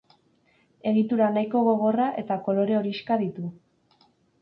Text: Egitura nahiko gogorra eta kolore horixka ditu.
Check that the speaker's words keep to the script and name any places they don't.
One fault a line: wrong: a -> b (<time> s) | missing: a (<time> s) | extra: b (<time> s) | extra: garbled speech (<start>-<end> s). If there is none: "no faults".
no faults